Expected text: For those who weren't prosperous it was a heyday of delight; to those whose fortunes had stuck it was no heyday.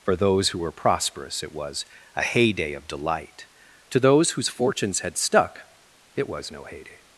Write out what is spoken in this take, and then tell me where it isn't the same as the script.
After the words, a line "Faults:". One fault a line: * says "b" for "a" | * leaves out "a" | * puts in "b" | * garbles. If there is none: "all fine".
For those who were prosperous it was a heyday of delight; to those whose fortunes had stuck it was no heyday.
Faults:
* says "were" for "weren't"